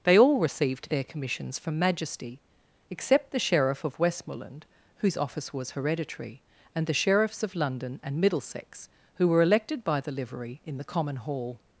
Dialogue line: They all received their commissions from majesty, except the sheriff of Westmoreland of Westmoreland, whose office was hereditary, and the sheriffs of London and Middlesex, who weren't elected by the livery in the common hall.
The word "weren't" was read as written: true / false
false